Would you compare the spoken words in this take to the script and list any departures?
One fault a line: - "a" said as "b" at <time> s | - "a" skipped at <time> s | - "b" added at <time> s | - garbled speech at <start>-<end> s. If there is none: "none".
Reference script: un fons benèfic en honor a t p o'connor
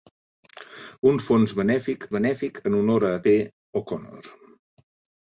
- "benèfic" added at 2.1 s
- "t" skipped at 3.1 s